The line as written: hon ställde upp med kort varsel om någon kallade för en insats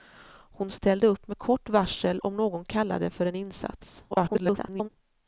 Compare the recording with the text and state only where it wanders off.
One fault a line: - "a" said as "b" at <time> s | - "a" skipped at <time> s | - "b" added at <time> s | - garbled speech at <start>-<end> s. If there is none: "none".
- garbled speech at 4.1-4.9 s